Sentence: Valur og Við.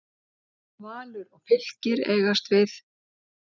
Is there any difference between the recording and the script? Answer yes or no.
yes